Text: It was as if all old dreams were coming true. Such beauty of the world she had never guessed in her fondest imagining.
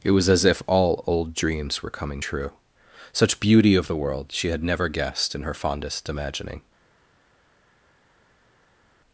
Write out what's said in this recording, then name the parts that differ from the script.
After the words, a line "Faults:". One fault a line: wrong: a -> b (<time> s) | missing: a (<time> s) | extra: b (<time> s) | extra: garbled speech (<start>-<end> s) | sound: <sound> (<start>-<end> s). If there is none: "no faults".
It was as if all old dreams were coming true. Such beauty of the world she had never guessed in her fondest imagining.
Faults:
no faults